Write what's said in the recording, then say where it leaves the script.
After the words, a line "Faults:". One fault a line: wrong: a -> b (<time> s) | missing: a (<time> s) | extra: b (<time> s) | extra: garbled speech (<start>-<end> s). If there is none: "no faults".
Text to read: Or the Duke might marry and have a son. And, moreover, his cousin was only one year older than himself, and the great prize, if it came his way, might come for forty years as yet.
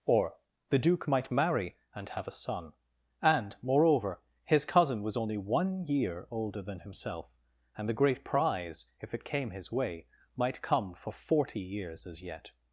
Or the Duke might marry and have a son. And, moreover, his cousin was only one year older than himself, and the great prize, if it came his way, might come for forty years as yet.
Faults:
no faults